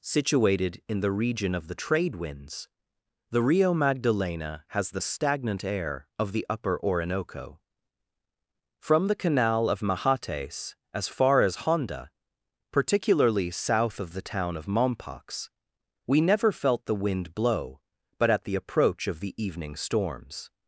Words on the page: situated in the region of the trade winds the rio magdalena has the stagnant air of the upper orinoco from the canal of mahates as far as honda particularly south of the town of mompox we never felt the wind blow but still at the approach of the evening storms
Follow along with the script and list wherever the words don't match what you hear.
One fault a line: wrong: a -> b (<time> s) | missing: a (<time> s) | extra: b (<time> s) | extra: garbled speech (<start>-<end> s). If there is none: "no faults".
missing: still (18.3 s)